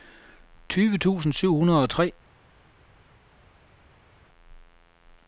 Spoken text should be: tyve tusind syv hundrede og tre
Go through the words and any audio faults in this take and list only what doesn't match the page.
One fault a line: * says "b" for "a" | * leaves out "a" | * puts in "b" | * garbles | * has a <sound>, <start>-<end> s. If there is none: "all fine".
all fine